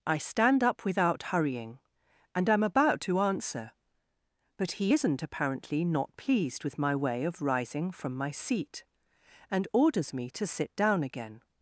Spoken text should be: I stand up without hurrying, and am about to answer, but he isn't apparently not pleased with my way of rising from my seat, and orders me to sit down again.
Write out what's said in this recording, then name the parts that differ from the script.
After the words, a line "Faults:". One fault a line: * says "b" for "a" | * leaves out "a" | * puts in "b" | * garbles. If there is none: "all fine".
I stand up without hurrying, and am about to answer, but he isn't apparently not pleased with my way of rising from my seat, and orders me to sit down again.
Faults:
all fine